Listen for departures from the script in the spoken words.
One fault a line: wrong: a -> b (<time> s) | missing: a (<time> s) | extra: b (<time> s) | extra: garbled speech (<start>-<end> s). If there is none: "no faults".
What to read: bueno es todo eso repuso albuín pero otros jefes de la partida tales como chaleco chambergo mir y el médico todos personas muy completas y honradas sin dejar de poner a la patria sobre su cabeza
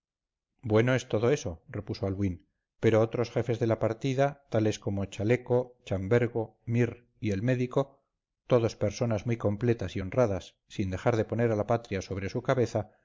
no faults